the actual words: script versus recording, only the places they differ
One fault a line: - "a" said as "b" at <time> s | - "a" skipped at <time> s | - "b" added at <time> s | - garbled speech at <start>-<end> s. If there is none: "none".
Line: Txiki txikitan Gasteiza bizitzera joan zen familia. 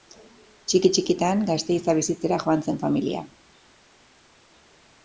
none